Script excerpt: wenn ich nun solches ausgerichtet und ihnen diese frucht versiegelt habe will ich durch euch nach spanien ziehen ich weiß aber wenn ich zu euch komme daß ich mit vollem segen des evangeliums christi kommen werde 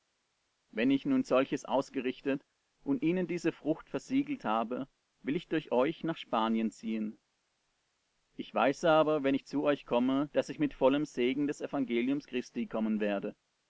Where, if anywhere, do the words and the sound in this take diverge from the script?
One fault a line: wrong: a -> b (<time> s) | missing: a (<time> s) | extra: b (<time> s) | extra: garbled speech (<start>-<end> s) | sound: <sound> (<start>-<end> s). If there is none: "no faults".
no faults